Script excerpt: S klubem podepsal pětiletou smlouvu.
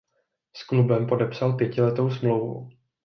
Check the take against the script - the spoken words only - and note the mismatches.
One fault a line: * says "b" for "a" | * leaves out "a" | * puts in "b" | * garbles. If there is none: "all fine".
all fine